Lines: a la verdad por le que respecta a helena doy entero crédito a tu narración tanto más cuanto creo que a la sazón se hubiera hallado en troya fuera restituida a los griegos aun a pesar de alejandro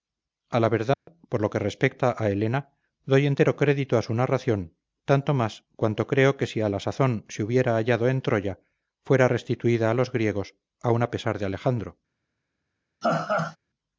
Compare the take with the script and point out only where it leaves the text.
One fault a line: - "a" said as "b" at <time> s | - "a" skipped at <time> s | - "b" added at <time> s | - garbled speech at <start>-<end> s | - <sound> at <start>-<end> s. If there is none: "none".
- dropout at 0.9-1.1 s
- "le" said as "lo" at 1.4 s
- "tu" said as "su" at 4.0 s
- "si" added at 6.5 s
- laugh at 13.0-13.6 s